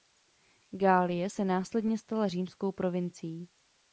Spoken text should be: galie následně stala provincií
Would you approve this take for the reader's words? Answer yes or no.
no